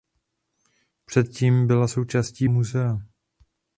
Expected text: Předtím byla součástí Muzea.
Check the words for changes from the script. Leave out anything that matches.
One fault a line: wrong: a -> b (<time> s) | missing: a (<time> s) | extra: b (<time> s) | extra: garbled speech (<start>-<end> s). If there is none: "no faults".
no faults